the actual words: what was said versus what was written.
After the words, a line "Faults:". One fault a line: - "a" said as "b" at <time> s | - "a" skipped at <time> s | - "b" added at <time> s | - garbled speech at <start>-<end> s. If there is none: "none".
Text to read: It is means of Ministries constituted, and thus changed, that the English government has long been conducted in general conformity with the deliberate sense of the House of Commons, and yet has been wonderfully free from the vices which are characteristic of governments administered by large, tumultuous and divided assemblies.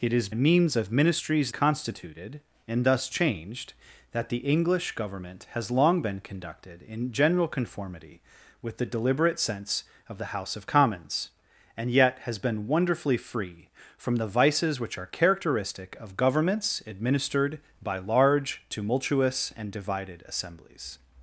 It is means of Ministries constituted, and thus changed, that the English government has long been conducted in general conformity with the deliberate sense of the House of Commons, and yet has been wonderfully free from the vices which are characteristic of governments administered by large, tumultuous and divided assemblies.
Faults:
none